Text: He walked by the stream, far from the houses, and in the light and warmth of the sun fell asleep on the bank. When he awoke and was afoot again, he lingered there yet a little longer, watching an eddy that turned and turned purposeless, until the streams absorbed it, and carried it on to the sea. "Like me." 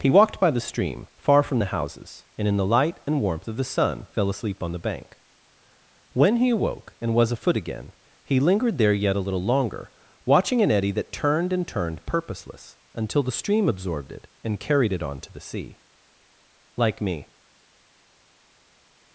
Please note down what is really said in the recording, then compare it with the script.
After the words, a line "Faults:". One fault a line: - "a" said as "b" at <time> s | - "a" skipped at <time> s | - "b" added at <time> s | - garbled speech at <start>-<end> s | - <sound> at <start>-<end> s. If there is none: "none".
He walked by the stream, far from the houses, and in the light and warmth of the sun fell asleep on the bank. When he awoke and was afoot again, he lingered there yet a little longer, watching an eddy that turned and turned purposeless, until the stream absorbed it, and carried it on to the sea. "Like me."
Faults:
- "streams" said as "stream" at 13.3 s